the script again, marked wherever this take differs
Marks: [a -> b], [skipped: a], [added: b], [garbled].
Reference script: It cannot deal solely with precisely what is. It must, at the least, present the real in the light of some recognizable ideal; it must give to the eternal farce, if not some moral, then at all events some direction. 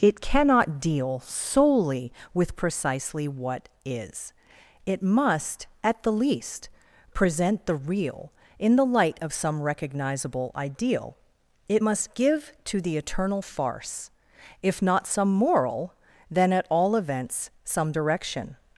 It cannot deal solely with precisely what is. It must, at the least, present the real in the light of some recognizable ideal; it must give to the eternal farce, if not some moral, then at all events some direction.